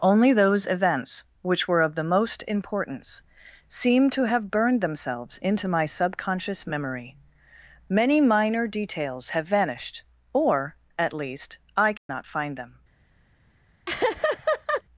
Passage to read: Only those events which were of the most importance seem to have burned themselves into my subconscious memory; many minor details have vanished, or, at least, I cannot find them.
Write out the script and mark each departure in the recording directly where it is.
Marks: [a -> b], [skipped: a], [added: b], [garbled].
Only those events which were of the most importance seem to have burned themselves into my subconscious memory; many minor details have vanished, or, at least, I cannot find them.